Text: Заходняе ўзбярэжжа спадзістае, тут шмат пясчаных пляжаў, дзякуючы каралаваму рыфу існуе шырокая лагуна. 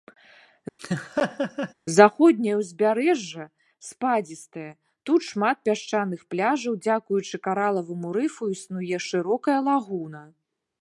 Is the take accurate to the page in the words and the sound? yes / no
no